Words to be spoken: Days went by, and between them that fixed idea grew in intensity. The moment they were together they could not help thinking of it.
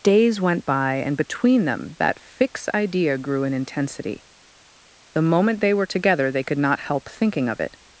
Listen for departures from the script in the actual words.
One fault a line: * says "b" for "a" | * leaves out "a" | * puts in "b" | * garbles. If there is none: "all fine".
* says "fix" for "fixed"